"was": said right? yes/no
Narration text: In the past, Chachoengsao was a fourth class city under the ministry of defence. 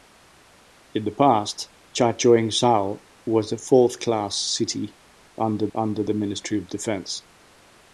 yes